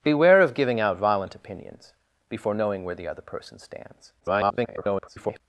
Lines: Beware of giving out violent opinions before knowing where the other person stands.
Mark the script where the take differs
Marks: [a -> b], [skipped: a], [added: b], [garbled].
Beware of giving out violent opinions before knowing where the other person stands. [garbled]